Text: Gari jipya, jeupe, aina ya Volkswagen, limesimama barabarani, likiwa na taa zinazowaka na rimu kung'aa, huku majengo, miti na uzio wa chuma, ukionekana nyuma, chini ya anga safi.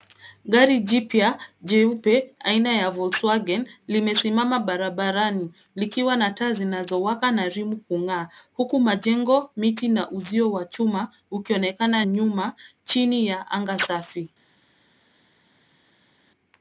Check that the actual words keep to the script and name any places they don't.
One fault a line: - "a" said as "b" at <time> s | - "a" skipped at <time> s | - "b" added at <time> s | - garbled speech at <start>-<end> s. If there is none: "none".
none